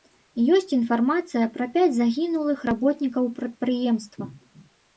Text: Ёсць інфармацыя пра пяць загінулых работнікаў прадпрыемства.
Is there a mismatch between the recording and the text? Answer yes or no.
no